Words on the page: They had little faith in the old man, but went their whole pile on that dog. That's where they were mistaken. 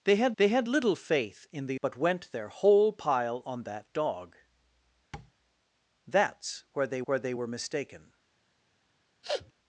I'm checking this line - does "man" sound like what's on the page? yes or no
no